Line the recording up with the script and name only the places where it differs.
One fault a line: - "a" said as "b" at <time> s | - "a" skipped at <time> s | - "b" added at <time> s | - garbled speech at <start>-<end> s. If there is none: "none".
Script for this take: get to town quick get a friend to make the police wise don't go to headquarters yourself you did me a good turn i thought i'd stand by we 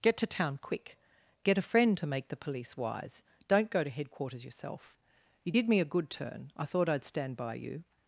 - "we" said as "you" at 7.5 s